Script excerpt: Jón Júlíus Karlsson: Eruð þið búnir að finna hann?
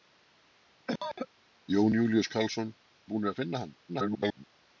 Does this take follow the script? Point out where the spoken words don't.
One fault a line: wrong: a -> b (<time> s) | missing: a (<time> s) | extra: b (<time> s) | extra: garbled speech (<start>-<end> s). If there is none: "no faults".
missing: Eruð (2.7 s)
extra: garbled speech (3.9-4.5 s)